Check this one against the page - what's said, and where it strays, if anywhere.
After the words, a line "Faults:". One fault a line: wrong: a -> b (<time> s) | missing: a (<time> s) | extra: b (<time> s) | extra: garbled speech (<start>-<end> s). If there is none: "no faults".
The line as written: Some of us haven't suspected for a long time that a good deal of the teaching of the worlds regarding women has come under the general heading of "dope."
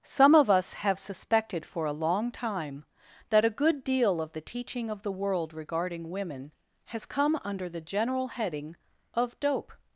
Some of us have suspected for a long time that a good deal of the teaching of the world regarding women has come under the general heading of "dope."
Faults:
wrong: haven't -> have (0.7 s)
wrong: worlds -> world (5.1 s)